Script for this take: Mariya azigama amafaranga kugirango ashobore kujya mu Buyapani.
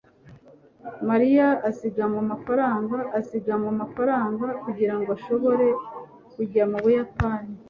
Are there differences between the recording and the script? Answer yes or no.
yes